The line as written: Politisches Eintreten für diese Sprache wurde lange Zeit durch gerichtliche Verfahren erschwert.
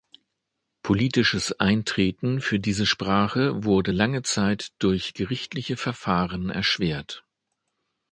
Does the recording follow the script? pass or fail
pass